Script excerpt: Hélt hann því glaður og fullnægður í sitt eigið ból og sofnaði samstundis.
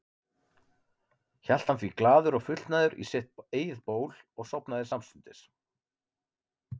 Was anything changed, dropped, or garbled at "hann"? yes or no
no